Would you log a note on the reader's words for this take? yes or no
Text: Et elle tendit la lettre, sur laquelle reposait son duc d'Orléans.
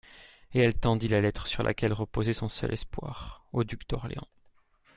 yes